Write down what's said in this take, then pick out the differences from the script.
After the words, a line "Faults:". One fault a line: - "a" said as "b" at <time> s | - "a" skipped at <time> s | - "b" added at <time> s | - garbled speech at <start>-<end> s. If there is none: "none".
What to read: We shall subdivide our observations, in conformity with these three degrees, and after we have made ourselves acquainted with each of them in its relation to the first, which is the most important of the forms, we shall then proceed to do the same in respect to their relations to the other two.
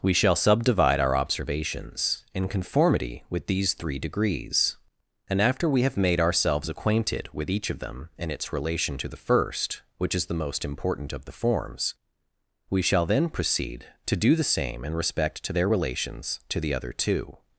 We shall subdivide our observations, in conformity with these three degrees, and after we have made ourselves acquainted with each of them in its relation to the first, which is the most important of the forms, we shall then proceed to do the same in respect to their relations to the other two.
Faults:
none